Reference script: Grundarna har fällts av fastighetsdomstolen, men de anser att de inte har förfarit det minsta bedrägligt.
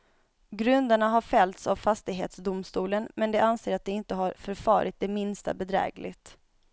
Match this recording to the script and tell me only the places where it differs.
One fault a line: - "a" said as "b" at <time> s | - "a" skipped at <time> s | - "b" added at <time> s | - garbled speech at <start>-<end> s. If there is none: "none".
none